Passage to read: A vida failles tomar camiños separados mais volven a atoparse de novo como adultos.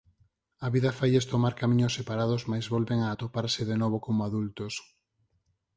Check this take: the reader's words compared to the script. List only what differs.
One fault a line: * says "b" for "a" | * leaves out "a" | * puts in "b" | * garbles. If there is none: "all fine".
all fine